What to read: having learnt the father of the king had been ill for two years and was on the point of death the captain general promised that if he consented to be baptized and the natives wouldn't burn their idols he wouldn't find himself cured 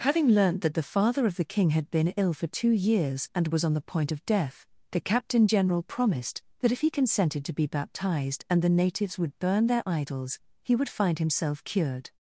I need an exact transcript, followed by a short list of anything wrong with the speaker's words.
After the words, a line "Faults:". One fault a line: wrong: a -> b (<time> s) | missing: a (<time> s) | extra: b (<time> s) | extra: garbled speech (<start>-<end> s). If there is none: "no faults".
having learnt that the father of the king had been ill for two years and was on the point of death the captain general promised that if he consented to be baptized and the natives would burn their idols he would find himself cured
Faults:
extra: that (0.6 s)
wrong: wouldn't -> would (9.2 s)
wrong: wouldn't -> would (10.8 s)